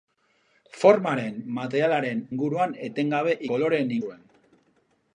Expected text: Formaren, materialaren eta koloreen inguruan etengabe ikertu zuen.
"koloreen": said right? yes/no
no